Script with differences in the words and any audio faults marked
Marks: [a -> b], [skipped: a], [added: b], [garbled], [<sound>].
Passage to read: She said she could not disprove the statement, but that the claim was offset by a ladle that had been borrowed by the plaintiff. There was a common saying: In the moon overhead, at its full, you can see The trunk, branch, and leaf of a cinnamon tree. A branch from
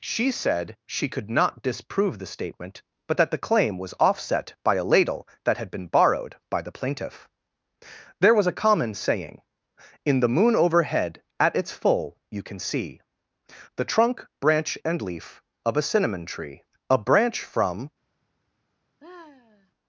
She said she could not disprove the statement, but that the claim was offset by a ladle that had been borrowed by the plaintiff. There was a common saying: In the moon overhead, at its full, you can see The trunk, branch, and leaf of a cinnamon tree. A branch from [sigh]